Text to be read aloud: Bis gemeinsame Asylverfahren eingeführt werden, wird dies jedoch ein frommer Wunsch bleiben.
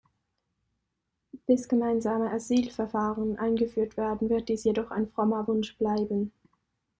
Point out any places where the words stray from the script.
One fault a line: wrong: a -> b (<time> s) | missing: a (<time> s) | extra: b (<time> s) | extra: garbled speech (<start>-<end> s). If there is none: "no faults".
no faults